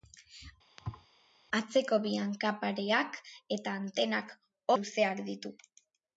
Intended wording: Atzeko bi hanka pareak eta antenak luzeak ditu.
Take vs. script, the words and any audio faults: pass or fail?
fail